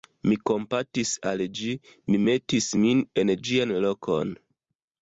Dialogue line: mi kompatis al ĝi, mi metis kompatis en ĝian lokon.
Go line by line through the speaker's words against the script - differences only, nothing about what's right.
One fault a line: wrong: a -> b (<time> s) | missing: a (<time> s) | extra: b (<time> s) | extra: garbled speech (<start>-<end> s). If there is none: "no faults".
wrong: kompatis -> min (2.8 s)